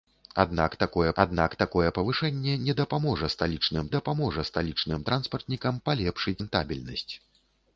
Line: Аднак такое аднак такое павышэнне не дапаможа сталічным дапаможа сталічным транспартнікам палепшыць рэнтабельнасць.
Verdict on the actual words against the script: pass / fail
pass